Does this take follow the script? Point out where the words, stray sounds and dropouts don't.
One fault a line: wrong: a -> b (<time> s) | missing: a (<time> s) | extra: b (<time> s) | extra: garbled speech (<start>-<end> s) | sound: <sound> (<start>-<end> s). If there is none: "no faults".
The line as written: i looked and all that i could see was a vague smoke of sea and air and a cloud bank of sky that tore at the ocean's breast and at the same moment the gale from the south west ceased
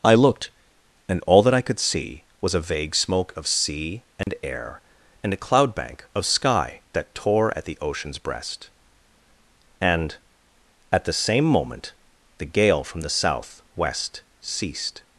sound: dropout (4.2-4.3 s)